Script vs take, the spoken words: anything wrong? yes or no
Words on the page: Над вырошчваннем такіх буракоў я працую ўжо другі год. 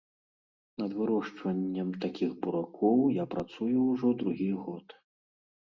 no